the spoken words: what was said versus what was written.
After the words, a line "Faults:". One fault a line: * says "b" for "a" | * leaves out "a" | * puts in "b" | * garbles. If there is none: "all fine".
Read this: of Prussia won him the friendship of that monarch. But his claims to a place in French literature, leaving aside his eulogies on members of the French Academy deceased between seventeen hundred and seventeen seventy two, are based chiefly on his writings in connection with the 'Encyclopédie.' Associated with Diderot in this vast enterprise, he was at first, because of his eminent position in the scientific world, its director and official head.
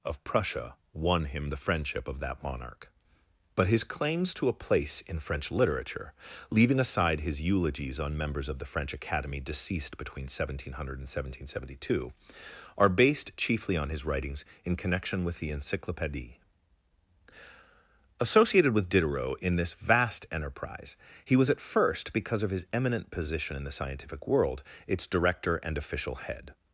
of Prussia won him the friendship of that monarch. But his claims to a place in French literature, leaving aside his eulogies on members of the French Academy deceased between seventeen hundred and seventeen seventy two, are based chiefly on his writings in connection with the 'Encyclopédie.' Associated with Diderot in this vast enterprise, he was at first, because of his eminent position in the scientific world, its director and official head.
Faults:
all fine